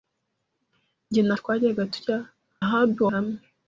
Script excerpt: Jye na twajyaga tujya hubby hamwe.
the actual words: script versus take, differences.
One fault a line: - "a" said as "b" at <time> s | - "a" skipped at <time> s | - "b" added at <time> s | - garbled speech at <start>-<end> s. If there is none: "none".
none